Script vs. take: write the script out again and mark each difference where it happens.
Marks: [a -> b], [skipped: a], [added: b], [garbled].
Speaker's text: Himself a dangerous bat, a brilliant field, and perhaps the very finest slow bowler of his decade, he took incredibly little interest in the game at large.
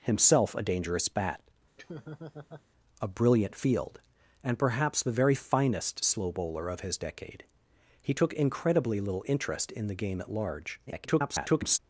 Himself a dangerous bat, a brilliant field, and perhaps the very finest slow bowler of his decade, he took incredibly little interest in the game at large. [garbled]